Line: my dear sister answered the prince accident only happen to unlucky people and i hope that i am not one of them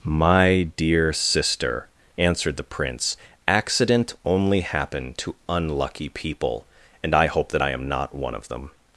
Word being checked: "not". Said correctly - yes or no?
yes